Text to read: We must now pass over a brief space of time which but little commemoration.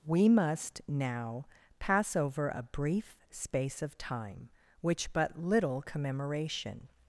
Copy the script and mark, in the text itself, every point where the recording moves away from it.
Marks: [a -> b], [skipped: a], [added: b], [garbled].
We must now pass over a brief space of time which but little commemoration.